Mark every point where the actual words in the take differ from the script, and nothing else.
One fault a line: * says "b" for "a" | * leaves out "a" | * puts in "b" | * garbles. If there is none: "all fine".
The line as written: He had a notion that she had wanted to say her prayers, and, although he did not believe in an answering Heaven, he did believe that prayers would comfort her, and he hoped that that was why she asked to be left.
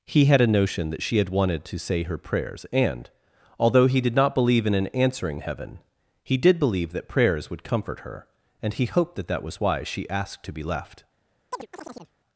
all fine